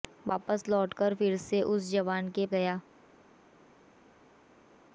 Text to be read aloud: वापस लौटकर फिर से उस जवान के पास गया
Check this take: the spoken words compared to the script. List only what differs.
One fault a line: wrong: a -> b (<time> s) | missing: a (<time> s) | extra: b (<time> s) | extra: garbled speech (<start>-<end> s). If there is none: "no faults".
missing: पास (2.5 s)